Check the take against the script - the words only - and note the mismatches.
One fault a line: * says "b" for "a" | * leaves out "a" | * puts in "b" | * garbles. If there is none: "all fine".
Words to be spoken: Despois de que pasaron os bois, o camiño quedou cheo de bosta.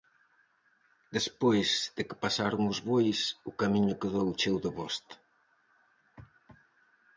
all fine